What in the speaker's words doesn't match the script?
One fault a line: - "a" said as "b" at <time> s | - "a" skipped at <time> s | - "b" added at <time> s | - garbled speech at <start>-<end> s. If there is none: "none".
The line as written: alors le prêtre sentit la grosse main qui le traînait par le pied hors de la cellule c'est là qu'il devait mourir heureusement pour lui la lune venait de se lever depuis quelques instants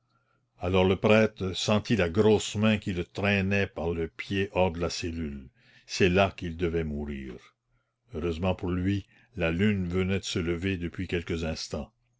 none